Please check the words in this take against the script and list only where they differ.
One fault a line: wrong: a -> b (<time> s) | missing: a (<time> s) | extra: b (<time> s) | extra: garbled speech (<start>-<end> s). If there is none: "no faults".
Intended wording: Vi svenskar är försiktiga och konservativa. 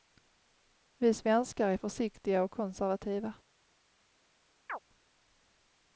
no faults